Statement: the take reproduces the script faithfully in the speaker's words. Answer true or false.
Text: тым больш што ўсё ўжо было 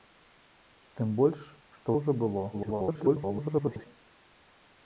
false